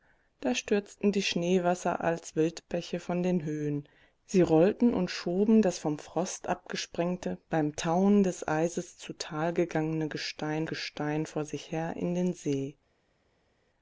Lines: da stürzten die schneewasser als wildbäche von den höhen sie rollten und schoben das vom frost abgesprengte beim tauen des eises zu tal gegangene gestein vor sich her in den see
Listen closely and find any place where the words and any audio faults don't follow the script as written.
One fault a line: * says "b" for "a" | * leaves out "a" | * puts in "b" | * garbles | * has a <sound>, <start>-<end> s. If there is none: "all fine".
* puts in "gestein"